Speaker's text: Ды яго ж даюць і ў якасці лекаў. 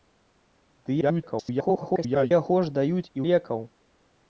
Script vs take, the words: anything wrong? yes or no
yes